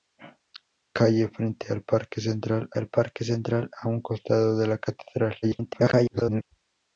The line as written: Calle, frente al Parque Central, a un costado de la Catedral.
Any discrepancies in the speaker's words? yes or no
yes